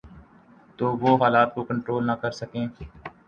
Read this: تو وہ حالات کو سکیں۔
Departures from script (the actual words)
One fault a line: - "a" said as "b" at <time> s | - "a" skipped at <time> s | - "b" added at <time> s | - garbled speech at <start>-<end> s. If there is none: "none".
- "کنٹرول نہ کر" added at 1.7 s